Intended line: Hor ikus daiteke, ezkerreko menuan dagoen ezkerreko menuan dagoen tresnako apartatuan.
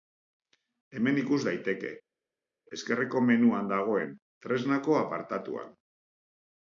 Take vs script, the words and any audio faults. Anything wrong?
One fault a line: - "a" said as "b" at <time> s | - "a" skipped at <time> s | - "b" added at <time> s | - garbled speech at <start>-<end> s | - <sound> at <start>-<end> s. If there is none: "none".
- "Hor" said as "Hemen" at 1.0 s
- "ezkerreko menuan dagoen" skipped at 4.1 s